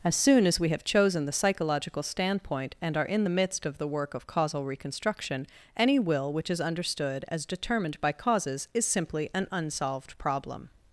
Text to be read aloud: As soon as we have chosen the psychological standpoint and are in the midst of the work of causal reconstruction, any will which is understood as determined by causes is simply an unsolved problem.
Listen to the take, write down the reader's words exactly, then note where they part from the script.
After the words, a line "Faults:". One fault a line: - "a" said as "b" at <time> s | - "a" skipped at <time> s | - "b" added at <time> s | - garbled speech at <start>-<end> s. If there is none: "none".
As soon as we have chosen the psychological standpoint and are in the midst of the work of causal reconstruction, any will which is understood as determined by causes is simply an unsolved problem.
Faults:
none